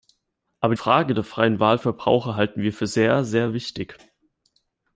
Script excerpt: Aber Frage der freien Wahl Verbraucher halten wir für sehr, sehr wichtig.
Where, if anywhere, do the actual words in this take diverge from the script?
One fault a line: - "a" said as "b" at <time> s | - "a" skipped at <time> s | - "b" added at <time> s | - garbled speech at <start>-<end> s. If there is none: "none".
none